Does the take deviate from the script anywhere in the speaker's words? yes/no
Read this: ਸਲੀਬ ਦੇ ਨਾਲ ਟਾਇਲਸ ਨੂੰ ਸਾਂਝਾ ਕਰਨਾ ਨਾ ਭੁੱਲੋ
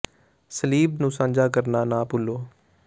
yes